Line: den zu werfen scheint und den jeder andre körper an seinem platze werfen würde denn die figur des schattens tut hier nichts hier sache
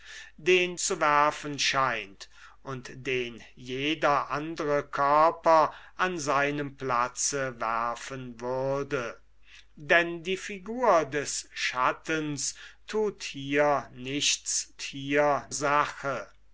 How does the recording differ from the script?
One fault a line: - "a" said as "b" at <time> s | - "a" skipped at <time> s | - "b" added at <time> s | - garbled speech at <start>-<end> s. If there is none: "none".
none